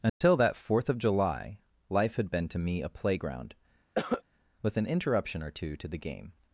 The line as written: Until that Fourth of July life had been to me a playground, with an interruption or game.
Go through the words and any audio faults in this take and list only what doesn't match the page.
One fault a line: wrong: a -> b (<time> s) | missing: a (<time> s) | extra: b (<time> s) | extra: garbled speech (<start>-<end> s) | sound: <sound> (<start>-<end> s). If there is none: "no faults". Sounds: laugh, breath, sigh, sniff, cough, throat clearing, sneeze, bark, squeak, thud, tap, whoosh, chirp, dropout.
sound: dropout (0.1-0.2 s)
sound: cough (4.0-4.2 s)
extra: two to the (5.5 s)